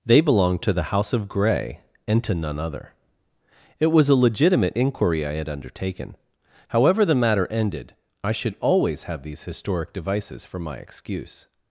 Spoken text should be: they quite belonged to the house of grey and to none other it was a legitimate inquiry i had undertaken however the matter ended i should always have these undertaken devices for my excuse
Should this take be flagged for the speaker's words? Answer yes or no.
yes